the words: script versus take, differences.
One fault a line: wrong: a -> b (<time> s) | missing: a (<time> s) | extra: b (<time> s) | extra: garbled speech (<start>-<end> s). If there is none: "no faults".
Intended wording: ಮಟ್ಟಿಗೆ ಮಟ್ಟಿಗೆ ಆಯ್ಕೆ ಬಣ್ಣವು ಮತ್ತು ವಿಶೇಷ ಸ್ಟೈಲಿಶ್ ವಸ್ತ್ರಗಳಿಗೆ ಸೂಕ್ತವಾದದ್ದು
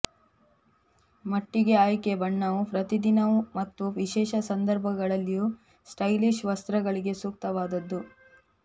missing: ಮಟ್ಟಿಗೆ (1.8 s)
extra: ಪ್ರತಿದಿನವೂ (2.7 s)
extra: ಸಂದರ್ಭಗಳಲ್ಲಿಯೂ (4.5 s)